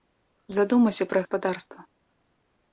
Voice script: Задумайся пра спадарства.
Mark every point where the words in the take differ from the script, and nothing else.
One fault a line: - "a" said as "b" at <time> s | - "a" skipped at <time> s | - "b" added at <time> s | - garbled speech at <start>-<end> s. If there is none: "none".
none